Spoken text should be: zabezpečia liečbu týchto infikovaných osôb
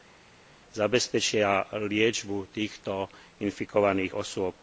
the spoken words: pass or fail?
pass